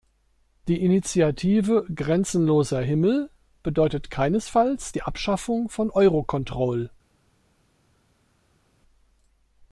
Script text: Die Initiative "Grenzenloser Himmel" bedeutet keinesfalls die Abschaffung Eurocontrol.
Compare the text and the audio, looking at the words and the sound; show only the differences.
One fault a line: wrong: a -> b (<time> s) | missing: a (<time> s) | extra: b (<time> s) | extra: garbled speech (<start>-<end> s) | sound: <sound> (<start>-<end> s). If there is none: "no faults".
extra: von (5.7 s)